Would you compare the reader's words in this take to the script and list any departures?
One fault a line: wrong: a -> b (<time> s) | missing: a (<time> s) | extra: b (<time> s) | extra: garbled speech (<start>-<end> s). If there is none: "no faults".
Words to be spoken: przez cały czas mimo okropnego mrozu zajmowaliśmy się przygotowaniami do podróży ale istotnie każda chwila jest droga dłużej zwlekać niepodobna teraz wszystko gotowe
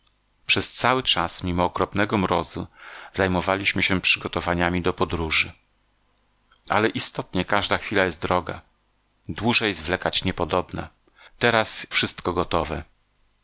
no faults